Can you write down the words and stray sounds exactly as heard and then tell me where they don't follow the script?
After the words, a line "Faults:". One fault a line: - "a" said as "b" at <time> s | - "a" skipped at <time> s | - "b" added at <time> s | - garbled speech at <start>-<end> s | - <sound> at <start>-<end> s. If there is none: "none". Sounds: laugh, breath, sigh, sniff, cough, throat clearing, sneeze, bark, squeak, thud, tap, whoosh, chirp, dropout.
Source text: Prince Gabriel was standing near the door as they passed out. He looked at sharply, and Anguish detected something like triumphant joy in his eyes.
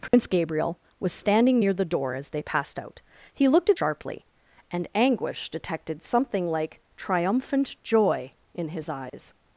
Prince Gabriel was standing near the door as they passed out. He looked at sharply, and Anguish detected something like triumphant joy in his eyes.
Faults:
- dropout at 0.1-0.1 s
- dropout at 9.1-9.1 s